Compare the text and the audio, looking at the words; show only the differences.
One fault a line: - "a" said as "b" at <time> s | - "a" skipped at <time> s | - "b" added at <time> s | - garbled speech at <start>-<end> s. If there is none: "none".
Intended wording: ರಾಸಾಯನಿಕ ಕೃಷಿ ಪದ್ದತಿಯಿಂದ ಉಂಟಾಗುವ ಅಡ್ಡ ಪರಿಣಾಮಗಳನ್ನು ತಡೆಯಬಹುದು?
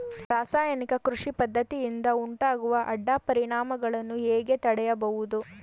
- "ಹೇಗೆ" added at 4.3 s